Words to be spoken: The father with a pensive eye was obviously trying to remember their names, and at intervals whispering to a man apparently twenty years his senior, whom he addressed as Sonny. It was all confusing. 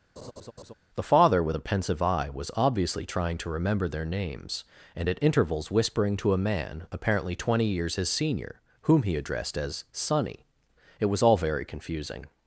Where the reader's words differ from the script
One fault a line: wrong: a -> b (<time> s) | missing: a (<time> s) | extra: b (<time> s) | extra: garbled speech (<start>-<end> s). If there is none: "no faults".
extra: very (11.4 s)